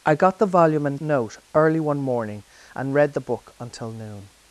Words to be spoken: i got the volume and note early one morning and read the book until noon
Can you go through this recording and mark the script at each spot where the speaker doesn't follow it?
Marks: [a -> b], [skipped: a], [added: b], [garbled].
i got the volume and note early one morning and read the book until noon